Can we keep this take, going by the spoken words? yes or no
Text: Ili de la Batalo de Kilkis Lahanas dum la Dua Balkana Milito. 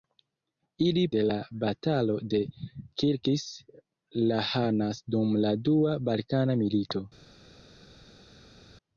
yes